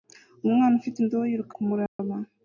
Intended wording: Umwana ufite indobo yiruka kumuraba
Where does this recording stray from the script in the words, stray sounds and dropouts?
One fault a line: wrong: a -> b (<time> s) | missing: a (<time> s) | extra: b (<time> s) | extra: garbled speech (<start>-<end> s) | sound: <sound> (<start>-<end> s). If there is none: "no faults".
sound: dropout (1.9-2.0 s)